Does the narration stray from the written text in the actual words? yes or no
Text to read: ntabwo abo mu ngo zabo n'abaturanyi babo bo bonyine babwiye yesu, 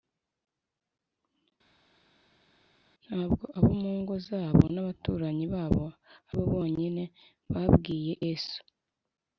no